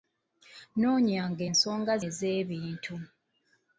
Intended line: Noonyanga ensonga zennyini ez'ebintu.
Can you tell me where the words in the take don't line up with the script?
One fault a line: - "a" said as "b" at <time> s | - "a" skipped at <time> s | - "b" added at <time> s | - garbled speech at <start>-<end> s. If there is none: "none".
- "zennyini" skipped at 1.9 s